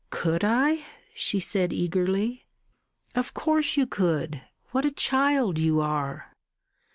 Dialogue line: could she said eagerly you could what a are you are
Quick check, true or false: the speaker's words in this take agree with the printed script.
false